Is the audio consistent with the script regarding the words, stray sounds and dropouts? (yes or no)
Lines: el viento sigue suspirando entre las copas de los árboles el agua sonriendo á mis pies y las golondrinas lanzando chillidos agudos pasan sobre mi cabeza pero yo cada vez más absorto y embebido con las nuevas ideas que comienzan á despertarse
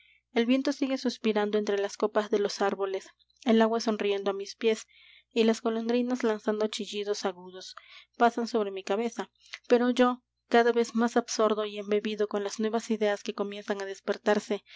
yes